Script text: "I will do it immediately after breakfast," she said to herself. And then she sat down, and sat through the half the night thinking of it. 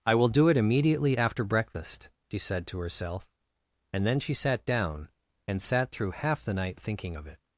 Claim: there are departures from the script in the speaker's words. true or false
true